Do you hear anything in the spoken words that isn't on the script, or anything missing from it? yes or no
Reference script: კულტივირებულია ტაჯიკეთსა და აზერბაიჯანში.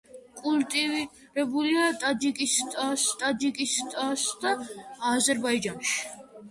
yes